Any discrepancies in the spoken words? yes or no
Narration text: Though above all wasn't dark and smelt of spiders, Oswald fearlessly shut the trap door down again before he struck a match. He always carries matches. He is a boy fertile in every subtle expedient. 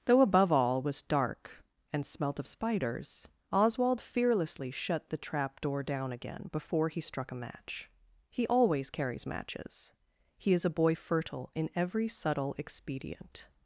yes